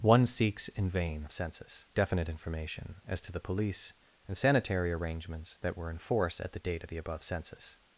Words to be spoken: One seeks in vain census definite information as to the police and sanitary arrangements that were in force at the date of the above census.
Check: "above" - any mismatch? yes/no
no